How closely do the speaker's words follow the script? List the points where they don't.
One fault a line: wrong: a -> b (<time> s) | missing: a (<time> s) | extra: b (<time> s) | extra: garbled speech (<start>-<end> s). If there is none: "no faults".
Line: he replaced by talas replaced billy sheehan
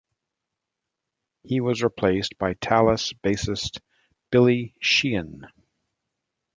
extra: was (1.6 s)
wrong: replaced -> bassist (3.1 s)